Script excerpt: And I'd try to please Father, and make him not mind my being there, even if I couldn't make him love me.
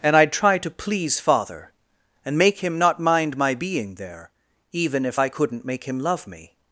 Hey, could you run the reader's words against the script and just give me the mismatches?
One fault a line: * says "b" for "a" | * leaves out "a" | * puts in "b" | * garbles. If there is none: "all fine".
all fine